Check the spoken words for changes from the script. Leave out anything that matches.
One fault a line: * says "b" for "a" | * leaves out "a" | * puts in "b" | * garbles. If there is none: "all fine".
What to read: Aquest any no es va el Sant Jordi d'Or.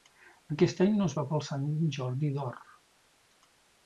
all fine